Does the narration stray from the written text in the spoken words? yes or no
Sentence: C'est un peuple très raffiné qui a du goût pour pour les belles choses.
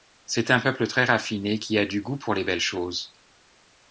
yes